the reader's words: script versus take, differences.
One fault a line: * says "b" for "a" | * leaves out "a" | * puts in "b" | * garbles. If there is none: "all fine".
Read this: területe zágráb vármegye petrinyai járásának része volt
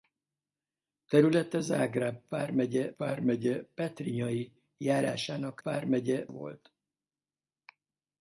* puts in "vármegye"
* says "vármegye" for "része"